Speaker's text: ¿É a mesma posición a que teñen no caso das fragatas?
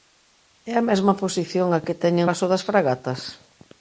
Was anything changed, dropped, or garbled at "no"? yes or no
yes